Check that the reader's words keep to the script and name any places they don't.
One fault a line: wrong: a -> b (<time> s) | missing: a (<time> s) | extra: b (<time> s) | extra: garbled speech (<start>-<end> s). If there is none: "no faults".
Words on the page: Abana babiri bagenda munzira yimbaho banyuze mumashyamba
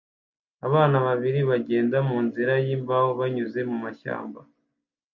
no faults